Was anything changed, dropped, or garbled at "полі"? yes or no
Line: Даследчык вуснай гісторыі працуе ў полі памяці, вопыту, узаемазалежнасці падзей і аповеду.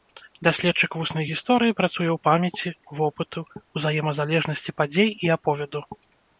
yes